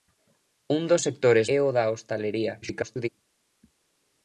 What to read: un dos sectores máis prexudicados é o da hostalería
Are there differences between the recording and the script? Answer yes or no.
yes